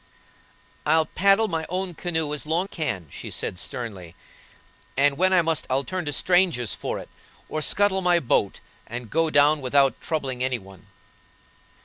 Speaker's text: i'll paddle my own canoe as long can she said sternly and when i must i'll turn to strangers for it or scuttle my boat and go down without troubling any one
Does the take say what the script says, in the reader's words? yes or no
yes